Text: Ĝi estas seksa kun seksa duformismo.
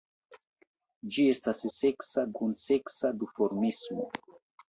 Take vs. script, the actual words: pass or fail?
pass